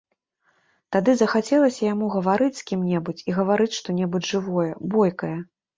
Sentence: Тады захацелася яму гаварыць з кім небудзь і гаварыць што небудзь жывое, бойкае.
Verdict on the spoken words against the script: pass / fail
pass